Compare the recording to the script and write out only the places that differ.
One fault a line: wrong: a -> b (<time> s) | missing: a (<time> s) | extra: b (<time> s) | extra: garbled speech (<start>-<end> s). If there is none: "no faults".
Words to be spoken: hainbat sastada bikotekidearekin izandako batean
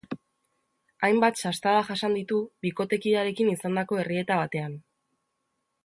extra: jasan ditu (1.9 s)
extra: errieta (4.1 s)